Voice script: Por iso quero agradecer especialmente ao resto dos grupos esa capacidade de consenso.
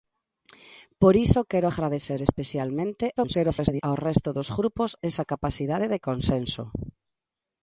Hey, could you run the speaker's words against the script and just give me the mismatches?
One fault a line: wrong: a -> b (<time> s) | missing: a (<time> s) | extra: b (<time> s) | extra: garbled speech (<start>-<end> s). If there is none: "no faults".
extra: garbled speech (3.2-3.8 s)